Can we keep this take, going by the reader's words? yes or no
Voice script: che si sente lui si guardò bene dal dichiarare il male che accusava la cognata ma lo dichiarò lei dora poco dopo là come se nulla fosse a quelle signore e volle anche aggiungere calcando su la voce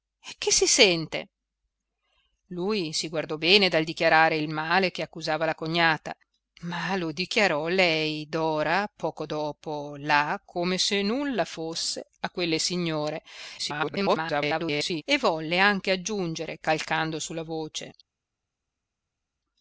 no